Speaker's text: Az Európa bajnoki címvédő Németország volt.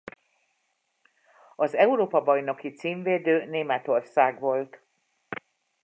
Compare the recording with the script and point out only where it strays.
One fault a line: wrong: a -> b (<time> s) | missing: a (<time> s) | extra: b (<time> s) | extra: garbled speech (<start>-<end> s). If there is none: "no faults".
no faults